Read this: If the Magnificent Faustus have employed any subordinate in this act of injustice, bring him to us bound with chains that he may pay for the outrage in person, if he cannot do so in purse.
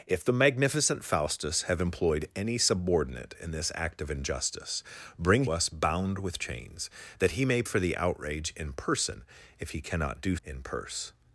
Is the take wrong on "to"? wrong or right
wrong